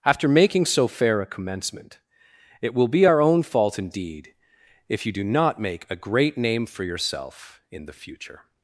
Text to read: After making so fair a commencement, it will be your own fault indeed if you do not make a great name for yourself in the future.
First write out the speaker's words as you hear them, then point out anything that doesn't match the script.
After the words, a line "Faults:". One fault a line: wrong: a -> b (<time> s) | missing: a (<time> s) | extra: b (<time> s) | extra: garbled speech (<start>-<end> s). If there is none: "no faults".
After making so fair a commencement, it will be our own fault indeed if you do not make a great name for yourself in the future.
Faults:
wrong: your -> our (3.0 s)